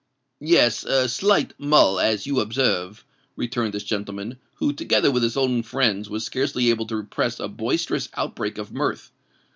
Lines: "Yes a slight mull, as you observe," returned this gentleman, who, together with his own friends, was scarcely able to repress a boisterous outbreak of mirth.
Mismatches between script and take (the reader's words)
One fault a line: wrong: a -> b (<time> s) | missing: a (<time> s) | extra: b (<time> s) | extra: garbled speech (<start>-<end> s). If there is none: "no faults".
no faults